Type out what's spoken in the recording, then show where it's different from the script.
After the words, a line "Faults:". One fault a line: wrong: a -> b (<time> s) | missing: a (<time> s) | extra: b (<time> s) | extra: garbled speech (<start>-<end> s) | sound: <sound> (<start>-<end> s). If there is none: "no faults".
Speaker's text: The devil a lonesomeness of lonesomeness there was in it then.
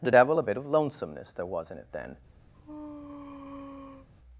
The devil a bit of lonesomeness there was in it then.
Faults:
wrong: lonesomeness -> bit (0.4 s)
sound: sneeze (2.5-4.1 s)